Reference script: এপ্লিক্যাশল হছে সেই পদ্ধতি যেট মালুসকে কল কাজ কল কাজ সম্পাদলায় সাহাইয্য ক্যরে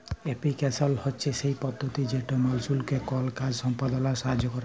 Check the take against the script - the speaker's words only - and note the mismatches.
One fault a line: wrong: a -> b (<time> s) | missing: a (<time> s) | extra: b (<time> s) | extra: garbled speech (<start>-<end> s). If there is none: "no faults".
missing: কল কাজ (3.5 s)